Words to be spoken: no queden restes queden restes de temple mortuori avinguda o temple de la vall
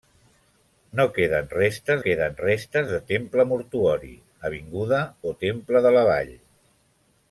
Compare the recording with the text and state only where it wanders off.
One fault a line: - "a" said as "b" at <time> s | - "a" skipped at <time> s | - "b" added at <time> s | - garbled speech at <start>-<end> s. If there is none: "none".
none